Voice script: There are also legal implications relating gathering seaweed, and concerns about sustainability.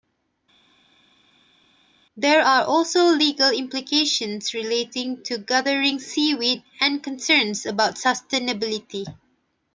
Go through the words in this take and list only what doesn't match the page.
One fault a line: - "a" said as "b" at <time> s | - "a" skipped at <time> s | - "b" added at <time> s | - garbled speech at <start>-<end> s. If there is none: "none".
- "to" added at 5.2 s